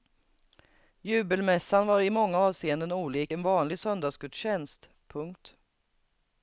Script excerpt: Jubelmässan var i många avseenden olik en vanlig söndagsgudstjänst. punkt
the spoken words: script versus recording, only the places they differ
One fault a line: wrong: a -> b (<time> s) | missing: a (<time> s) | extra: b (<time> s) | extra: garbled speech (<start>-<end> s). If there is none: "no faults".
no faults